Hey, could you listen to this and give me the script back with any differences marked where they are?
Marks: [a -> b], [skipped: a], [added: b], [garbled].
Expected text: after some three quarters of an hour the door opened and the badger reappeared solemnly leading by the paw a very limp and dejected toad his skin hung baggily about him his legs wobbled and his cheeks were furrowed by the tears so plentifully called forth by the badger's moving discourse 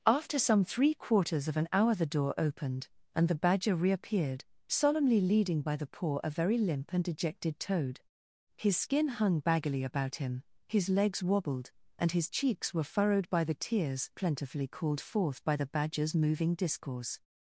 after some three quarters of an hour the door opened and the badger reappeared solemnly leading by the paw a very limp and dejected toad his skin hung baggily about him his legs wobbled and his cheeks were furrowed by the tears [skipped: so] plentifully called forth by the badger's moving discourse